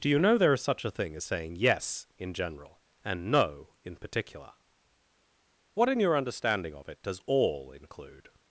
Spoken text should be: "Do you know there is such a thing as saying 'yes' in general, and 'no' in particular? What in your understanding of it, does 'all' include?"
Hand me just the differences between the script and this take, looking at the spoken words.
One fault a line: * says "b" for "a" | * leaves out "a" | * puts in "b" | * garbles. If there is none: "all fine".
all fine